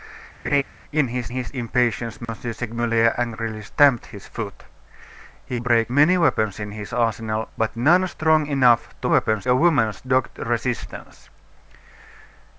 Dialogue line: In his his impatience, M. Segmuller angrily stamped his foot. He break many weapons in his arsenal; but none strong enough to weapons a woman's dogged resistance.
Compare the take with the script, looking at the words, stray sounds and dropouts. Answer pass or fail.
fail